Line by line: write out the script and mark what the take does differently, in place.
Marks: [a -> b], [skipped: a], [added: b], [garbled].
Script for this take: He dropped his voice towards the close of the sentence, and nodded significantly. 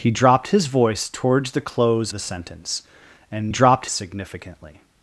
He dropped his voice towards the close [skipped: of] the sentence, and [nodded -> dropped] significantly.